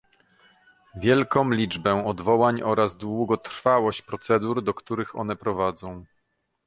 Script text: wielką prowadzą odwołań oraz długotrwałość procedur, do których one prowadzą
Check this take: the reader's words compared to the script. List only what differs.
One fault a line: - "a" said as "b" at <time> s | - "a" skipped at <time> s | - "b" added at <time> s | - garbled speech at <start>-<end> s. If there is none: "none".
- "prowadzą" said as "liczbę" at 1.5 s